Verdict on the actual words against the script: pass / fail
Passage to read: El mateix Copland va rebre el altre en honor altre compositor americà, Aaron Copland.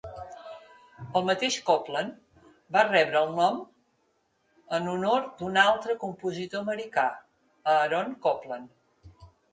fail